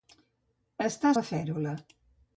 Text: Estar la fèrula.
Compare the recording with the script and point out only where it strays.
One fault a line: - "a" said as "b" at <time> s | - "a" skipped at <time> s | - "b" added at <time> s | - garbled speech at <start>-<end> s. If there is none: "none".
none